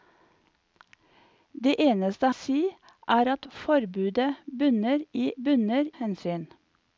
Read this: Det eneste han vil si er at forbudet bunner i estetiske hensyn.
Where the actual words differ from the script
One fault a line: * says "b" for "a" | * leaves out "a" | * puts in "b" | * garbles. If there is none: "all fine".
* leaves out "han vil"
* says "bunner" for "estetiske"